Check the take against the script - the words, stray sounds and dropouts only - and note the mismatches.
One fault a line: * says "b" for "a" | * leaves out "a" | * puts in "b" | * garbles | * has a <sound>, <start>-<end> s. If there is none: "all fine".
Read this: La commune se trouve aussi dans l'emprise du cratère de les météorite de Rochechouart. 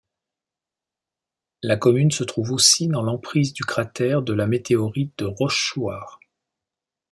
* says "la" for "les"